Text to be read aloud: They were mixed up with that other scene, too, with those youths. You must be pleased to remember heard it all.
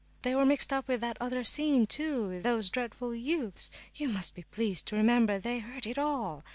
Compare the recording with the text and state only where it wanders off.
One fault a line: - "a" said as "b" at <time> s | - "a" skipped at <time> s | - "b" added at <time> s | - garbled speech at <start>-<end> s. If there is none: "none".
- "dreadful" added at 2.7 s
- "they" added at 5.4 s